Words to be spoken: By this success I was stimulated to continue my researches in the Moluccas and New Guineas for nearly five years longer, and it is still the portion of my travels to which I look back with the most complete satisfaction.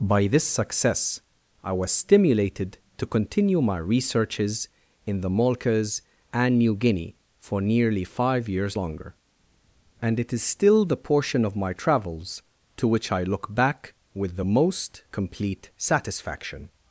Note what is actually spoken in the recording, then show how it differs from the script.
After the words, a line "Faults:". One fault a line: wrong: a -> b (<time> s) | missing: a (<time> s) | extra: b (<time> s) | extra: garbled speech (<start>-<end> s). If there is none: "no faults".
By this success I was stimulated to continue my researches in the Moluccas and New Guinea for nearly five years longer, and it is still the portion of my travels to which I look back with the most complete satisfaction.
Faults:
wrong: Guineas -> Guinea (6.8 s)